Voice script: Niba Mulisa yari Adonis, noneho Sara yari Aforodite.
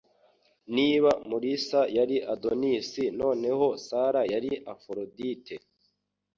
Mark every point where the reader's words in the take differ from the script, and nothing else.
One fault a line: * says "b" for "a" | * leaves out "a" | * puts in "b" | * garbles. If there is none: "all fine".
all fine